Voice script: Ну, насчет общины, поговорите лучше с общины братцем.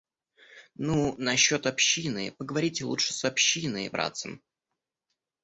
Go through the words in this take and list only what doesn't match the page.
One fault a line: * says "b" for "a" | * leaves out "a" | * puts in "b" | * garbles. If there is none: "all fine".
all fine